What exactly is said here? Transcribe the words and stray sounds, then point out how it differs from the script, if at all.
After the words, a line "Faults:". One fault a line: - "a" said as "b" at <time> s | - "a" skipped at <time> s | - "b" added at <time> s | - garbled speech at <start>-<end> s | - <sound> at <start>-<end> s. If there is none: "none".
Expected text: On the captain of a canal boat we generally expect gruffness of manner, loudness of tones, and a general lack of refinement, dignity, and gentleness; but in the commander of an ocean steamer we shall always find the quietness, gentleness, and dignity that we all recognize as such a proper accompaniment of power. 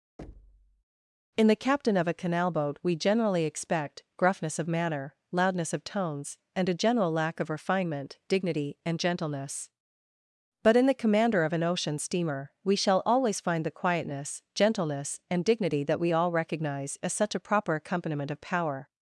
In the captain of a canal boat we generally expect gruffness of manner, loudness of tones, and a general lack of refinement, dignity, and gentleness; but in the commander of an ocean steamer we shall always find the quietness, gentleness, and dignity that we all recognize as such a proper accompaniment of power.
Faults:
- thud at 0.2-0.8 s
- "On" said as "In" at 1.4 s